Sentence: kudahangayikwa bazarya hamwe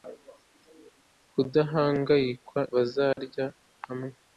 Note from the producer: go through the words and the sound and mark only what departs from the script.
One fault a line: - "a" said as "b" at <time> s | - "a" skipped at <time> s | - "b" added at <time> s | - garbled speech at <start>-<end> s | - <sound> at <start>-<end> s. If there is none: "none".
- dropout at 3.1-3.2 s